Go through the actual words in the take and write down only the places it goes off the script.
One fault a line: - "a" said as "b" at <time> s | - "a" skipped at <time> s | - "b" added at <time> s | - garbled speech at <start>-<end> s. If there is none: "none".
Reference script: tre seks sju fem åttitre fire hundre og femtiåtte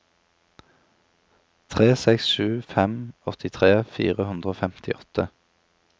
none